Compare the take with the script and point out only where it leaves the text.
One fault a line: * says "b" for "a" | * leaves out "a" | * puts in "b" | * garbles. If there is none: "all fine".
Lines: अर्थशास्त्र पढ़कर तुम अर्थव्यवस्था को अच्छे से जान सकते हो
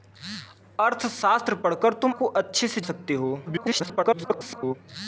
* leaves out "अर्थव्यवस्था"
* leaves out "जान"
* garbles